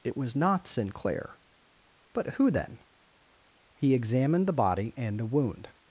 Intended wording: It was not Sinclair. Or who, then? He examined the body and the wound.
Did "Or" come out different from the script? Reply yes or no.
yes